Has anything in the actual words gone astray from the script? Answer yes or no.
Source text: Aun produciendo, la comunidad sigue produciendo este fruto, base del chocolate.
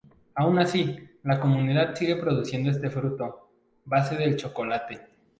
yes